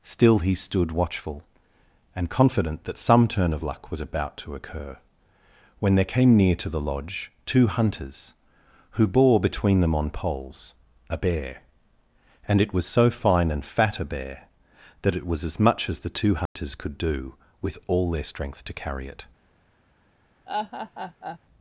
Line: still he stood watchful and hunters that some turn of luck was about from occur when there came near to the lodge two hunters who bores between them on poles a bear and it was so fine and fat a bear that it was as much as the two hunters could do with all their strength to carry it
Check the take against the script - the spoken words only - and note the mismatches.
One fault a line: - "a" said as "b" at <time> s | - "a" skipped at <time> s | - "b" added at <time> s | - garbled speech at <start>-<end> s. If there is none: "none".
- "hunters" said as "confident" at 2.3 s
- "from" said as "to" at 4.4 s
- "bores" said as "bore" at 9.1 s